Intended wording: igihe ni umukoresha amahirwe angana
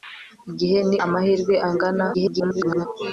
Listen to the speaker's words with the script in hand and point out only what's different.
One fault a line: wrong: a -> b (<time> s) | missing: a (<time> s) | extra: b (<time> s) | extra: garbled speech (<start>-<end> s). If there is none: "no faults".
missing: umukoresha (1.0 s)
extra: garbled speech (2.1-2.9 s)